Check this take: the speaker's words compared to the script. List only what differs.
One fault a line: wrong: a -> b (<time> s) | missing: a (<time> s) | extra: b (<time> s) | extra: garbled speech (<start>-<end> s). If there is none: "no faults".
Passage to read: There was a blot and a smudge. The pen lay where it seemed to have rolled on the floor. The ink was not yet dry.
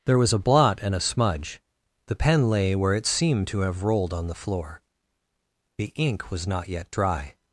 no faults